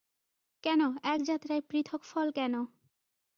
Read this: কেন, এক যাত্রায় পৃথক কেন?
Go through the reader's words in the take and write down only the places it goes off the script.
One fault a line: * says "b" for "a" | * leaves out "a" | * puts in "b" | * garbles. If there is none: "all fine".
* puts in "ফল"